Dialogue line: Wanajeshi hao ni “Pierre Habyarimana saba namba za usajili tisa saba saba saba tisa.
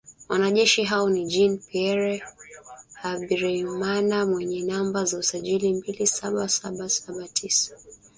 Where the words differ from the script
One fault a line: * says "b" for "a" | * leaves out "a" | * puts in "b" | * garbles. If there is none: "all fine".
* puts in "Jean"
* says "mwenye" for "saba"
* says "mbili" for "tisa"